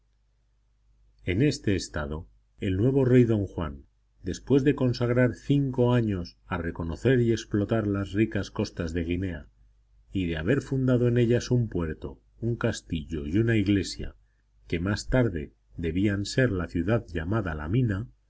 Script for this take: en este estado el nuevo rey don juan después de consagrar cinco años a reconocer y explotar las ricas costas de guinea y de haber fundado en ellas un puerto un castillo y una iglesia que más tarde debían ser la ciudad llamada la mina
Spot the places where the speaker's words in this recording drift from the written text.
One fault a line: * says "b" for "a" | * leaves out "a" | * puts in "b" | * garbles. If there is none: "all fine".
all fine